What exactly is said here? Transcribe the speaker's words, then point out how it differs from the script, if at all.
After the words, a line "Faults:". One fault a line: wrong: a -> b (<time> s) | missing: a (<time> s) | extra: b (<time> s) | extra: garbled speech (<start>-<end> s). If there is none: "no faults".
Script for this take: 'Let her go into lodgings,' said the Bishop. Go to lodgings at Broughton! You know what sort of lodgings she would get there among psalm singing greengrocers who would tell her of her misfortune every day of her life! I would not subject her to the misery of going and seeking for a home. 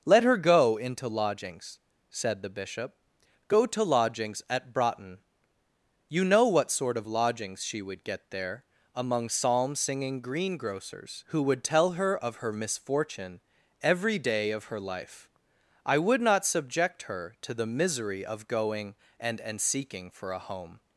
'Let her go into lodgings,' said the Bishop. Go to lodgings at Broughton! You know what sort of lodgings she would get there among psalm singing greengrocers who would tell her of her misfortune every day of her life! I would not subject her to the misery of going and and seeking for a home.
Faults:
extra: and (19.4 s)